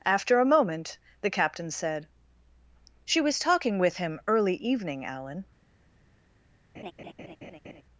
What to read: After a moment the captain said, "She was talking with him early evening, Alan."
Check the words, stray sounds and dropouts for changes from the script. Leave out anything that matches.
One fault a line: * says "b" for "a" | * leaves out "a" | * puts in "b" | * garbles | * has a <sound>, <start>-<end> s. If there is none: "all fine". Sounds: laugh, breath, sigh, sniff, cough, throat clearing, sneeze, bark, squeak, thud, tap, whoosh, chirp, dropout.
* has a laugh, 6.7-7.8 s